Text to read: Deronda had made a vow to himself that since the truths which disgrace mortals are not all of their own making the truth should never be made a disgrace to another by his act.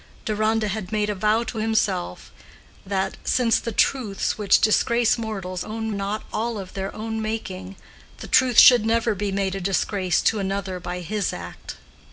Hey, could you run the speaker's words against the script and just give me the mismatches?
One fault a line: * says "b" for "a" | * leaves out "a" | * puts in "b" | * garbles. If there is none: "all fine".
* says "own" for "are"